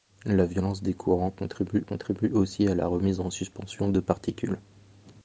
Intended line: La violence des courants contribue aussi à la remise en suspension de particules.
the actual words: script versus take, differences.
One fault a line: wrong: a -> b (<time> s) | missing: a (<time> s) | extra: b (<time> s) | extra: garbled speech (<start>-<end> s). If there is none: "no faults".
extra: contribue (1.8 s)